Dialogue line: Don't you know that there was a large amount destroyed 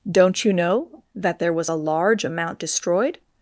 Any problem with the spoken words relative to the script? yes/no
no